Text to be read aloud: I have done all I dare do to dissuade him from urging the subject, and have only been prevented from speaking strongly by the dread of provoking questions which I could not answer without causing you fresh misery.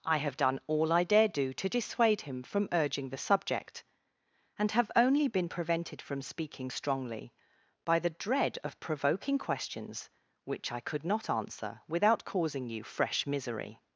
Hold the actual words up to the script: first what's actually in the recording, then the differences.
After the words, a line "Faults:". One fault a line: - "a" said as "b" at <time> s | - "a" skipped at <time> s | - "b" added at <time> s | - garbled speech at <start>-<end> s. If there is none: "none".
I have done all I dare do to dissuade him from urging the subject, and have only been prevented from speaking strongly by the dread of provoking questions which I could not answer without causing you fresh misery.
Faults:
none